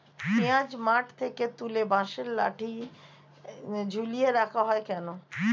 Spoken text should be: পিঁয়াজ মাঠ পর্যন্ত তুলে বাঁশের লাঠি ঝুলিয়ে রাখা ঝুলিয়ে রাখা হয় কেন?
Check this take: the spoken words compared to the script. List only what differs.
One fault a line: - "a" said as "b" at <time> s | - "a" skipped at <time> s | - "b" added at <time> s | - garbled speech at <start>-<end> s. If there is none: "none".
- "পর্যন্ত" said as "থেকে" at 1.2 s
- "ঝুলিয়ে রাখা" skipped at 4.6 s